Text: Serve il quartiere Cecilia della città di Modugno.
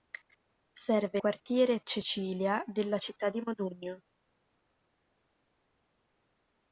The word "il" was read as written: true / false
false